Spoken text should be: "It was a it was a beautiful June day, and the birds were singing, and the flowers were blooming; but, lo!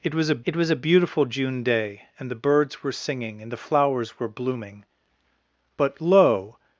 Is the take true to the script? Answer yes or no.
yes